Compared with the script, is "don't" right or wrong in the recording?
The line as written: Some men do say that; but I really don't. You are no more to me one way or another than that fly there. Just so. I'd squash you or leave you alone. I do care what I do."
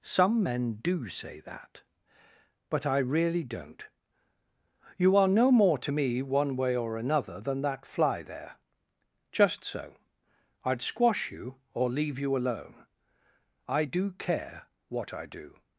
right